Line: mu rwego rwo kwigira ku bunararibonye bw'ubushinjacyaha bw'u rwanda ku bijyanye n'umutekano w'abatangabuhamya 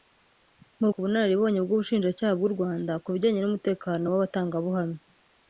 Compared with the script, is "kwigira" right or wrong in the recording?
wrong